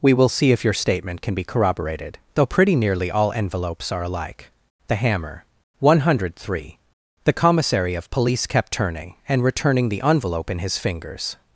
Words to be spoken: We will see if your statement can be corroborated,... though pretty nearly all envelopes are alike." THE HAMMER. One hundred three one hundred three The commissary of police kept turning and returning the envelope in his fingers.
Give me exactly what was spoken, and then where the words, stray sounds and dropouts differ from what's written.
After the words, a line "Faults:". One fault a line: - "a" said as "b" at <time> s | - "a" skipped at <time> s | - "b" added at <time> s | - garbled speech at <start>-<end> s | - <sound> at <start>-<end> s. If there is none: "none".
We will see if your statement can be corroborated,... though pretty nearly all envelopes are alike." THE HAMMER. One hundred three The commissary of police kept turning and returning the envelope in his fingers.
Faults:
- "one hundred three" skipped at 6.8 s